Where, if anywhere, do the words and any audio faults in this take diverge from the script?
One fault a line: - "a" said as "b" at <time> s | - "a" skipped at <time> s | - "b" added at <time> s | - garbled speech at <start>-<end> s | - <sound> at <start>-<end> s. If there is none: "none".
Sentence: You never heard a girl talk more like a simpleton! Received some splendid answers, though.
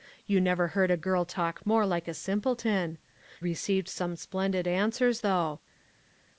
none